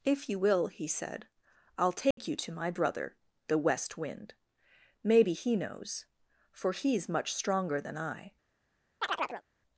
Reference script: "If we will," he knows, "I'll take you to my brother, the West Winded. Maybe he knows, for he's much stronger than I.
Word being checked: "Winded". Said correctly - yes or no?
no